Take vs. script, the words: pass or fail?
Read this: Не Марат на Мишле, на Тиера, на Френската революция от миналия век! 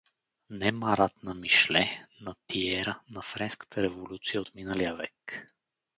pass